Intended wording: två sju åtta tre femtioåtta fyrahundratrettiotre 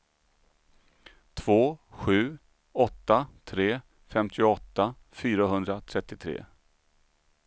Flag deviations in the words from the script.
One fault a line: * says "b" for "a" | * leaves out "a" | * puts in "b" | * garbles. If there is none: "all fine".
all fine